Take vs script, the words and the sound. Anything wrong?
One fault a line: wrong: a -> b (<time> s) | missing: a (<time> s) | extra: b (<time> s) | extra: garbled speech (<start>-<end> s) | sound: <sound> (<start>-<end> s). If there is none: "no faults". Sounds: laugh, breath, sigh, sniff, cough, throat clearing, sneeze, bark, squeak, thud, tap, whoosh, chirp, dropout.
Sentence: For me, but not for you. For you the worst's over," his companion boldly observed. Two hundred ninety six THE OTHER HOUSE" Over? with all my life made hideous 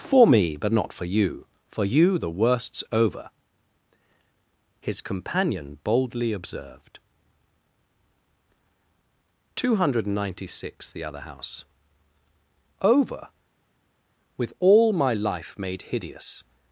no faults